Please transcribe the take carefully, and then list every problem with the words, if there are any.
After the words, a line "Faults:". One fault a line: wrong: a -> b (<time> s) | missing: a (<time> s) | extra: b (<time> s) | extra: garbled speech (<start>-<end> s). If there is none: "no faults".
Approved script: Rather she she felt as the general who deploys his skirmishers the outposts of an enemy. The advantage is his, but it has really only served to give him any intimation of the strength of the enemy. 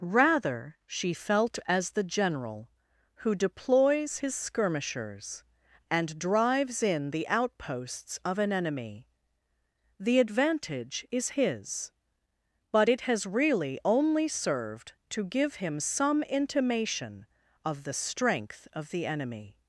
Rather she felt as the general who deploys his skirmishers and drives in the outposts of an enemy. The advantage is his, but it has really only served to give him some intimation of the strength of the enemy.
Faults:
missing: she (1.1 s)
extra: and drives in (5.9 s)
wrong: any -> some (15.8 s)